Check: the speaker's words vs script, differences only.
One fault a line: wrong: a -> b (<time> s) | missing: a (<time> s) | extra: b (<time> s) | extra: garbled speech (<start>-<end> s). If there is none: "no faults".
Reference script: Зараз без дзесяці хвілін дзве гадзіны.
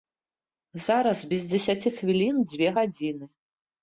no faults